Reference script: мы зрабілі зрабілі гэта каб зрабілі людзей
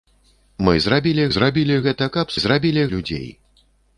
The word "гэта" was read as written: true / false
true